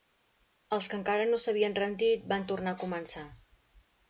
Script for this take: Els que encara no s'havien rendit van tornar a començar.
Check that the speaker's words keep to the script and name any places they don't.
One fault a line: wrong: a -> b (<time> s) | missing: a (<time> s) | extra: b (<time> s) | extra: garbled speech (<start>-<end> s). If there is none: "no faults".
no faults